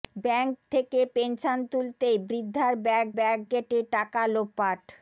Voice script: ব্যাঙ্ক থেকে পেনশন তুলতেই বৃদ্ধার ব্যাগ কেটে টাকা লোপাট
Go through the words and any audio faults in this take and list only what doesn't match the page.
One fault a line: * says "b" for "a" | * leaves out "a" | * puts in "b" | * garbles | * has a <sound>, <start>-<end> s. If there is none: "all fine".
* puts in "ব্যাগ"